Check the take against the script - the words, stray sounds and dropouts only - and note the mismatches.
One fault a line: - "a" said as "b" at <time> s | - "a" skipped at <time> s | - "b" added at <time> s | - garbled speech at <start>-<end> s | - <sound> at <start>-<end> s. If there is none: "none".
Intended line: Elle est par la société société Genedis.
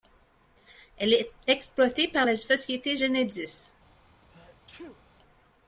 - "exploitée" added at 1.5 s
- "société" skipped at 3.0 s
- sneeze at 4.3-5.0 s